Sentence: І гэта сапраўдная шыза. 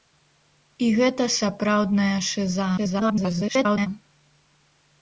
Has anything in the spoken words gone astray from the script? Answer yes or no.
yes